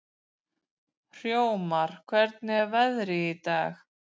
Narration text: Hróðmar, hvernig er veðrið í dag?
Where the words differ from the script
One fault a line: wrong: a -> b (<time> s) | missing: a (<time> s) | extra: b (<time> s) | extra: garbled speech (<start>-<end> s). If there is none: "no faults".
no faults